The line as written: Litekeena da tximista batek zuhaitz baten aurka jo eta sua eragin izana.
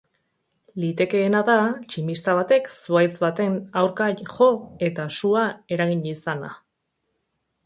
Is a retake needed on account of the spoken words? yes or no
no